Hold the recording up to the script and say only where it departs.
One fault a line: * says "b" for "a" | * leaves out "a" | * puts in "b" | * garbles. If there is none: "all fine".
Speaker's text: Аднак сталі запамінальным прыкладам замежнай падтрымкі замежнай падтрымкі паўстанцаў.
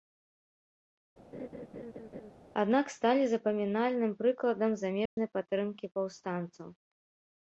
* leaves out "замежнай падтрымкі"